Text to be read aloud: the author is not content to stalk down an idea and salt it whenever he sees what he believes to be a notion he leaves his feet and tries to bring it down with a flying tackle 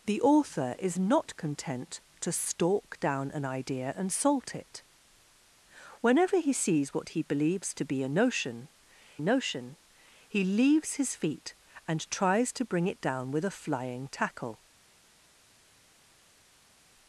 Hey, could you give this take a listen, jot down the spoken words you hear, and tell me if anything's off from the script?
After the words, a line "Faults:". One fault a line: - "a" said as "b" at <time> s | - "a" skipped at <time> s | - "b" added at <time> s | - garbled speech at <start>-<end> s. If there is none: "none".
the author is not content to stalk down an idea and salt it whenever he sees what he believes to be a notion notion he leaves his feet and tries to bring it down with a flying tackle
Faults:
- "notion" added at 9.2 s